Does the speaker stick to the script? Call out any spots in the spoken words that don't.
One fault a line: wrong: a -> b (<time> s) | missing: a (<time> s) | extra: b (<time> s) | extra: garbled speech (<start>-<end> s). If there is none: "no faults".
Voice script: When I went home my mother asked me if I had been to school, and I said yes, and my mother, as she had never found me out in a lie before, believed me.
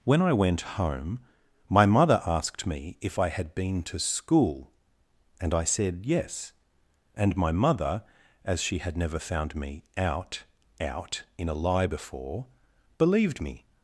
extra: out (10.8 s)